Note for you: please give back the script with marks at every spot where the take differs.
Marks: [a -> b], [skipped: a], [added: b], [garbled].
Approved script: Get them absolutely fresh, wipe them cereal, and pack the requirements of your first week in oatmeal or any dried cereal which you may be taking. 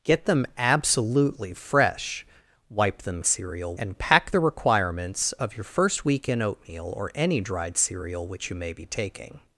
Get them absolutely fresh, wipe them cereal, and pack the requirements of your first week in oatmeal or any dried cereal which you may be taking.